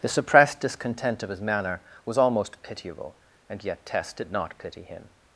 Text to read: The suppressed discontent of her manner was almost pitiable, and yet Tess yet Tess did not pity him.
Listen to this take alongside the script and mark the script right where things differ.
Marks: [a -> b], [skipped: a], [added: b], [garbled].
The suppressed discontent of [her -> his] manner was almost pitiable, and yet Tess [skipped: yet Tess] did not pity him.